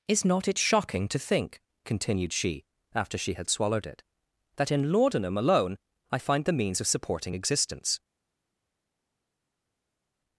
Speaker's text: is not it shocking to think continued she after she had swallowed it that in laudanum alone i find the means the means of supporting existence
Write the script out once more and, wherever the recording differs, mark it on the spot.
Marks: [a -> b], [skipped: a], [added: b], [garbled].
is not it shocking to think continued she after she had swallowed it that in laudanum alone i find the means [skipped: the means] of supporting existence